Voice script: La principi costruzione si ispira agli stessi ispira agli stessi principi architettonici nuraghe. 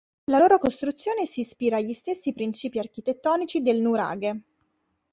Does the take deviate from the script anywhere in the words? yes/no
yes